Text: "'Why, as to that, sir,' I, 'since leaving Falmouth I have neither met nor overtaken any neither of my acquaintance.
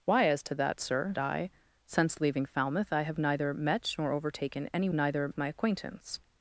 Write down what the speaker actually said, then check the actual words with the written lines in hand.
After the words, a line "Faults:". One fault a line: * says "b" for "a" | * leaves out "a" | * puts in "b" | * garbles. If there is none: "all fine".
"'Why, as to that, sir,' I, 'since leaving Falmouth I have neither met nor overtaken any neither of my acquaintance.
Faults:
all fine